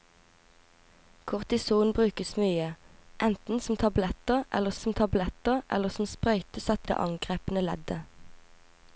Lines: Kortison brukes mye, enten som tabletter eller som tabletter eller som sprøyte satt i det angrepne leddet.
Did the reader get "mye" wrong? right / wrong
right